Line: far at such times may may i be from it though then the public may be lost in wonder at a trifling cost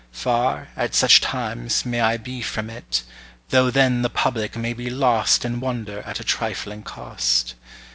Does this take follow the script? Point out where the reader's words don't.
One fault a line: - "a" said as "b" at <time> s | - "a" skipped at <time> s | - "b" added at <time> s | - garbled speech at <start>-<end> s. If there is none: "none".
- "may" skipped at 2.0 s